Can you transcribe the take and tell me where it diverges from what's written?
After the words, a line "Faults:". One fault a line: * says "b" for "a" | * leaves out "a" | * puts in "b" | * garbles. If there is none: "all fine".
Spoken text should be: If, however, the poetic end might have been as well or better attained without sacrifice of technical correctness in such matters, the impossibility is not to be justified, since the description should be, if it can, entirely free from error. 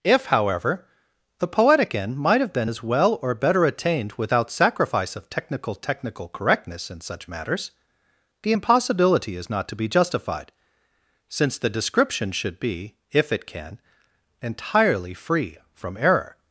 If, however, the poetic end might have been as well or better attained without sacrifice of technical technical correctness in such matters, the impossibility is not to be justified, since the description should be, if it can, entirely free from error.
Faults:
* puts in "technical"